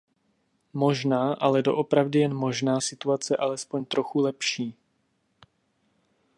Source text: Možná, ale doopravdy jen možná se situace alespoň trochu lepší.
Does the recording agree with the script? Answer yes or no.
no